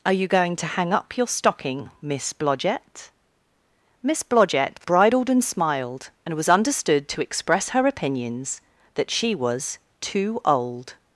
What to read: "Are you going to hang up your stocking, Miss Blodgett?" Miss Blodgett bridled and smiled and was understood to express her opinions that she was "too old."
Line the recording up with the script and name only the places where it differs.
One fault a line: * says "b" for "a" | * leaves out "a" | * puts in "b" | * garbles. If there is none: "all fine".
all fine